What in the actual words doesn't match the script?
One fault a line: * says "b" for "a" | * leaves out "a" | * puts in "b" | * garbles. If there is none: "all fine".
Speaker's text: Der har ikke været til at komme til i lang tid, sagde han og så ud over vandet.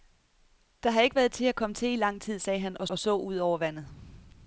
* puts in "og"